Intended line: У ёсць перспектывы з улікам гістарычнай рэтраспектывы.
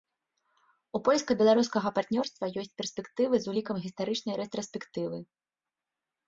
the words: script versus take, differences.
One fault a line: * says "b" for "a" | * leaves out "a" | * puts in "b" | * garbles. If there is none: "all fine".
* puts in "польска беларускага партнёрства"